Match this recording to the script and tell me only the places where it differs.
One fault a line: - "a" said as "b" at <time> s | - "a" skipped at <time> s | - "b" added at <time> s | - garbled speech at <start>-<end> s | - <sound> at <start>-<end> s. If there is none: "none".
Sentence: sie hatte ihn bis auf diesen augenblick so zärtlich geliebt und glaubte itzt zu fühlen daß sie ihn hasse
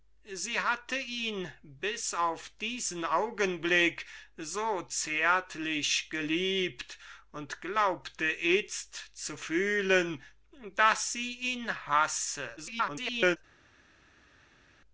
- garbled speech at 12.6-13.4 s